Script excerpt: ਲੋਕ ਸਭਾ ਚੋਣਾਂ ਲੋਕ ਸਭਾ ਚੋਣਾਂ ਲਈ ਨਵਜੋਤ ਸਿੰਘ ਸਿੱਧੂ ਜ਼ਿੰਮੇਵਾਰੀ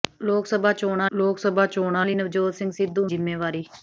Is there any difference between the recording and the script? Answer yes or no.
no